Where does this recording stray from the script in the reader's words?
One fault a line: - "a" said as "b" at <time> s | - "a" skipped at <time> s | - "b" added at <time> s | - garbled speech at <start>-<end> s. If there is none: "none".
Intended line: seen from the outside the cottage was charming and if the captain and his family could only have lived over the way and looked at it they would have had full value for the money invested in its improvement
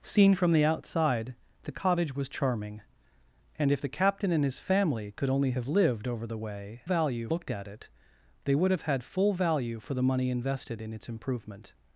- "and" said as "value" at 6.8 s